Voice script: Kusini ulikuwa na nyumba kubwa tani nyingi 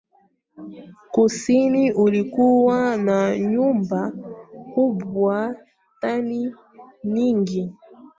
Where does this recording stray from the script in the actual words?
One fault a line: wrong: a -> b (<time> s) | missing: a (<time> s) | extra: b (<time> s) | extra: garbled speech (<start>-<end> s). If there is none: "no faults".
no faults